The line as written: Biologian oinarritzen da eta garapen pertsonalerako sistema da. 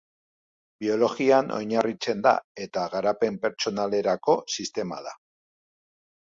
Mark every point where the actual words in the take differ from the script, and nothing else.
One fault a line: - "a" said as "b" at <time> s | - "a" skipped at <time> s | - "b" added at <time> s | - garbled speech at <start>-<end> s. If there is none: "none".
none